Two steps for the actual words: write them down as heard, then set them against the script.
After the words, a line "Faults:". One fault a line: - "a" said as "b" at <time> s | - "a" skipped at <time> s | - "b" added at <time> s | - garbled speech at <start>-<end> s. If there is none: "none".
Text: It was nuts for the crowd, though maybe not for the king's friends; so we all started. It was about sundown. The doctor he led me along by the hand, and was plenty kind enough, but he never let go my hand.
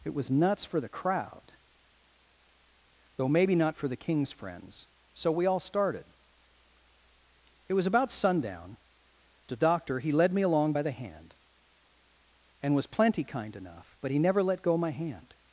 It was nuts for the crowd, though maybe not for the king's friends; so we all started. It was about sundown. The doctor he led me along by the hand, and was plenty kind enough, but he never let go my hand.
Faults:
none